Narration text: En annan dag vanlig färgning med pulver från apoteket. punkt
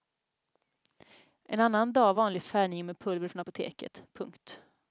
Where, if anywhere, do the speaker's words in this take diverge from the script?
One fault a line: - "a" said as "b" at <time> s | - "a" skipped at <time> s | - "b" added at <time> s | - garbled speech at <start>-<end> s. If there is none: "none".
none